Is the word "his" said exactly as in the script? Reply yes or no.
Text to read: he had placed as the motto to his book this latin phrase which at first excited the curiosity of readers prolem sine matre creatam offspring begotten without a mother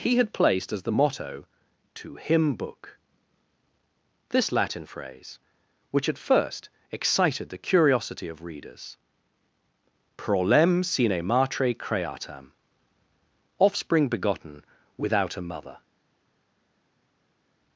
no